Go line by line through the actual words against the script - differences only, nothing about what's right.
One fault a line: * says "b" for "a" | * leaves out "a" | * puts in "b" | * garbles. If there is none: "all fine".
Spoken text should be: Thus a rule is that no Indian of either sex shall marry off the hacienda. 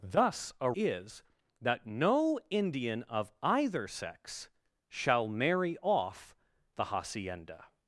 * leaves out "rule"